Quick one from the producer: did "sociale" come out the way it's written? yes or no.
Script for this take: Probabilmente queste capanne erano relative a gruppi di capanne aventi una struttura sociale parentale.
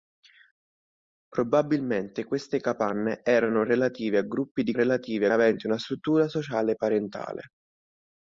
yes